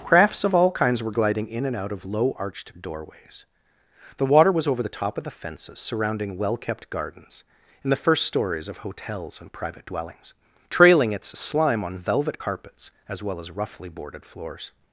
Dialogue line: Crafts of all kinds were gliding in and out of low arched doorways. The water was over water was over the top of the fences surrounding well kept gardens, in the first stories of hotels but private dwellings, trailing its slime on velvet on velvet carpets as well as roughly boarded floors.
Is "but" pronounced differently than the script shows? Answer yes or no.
yes